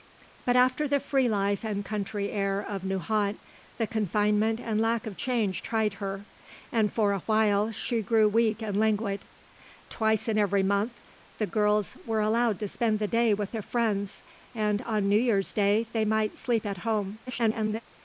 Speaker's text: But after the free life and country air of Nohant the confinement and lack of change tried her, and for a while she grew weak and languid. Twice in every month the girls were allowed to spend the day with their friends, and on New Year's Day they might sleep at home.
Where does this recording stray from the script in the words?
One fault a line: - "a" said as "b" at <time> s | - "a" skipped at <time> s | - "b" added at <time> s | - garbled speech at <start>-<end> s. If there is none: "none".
- garbled speech at 17.3-17.8 s